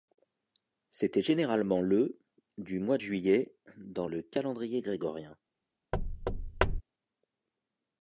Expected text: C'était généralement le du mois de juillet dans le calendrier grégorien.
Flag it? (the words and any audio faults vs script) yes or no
yes